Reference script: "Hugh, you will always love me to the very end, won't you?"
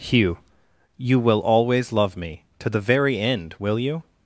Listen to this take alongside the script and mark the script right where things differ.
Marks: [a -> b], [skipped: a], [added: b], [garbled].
"Hugh, you will always love me to the very end, [won't -> will] you?"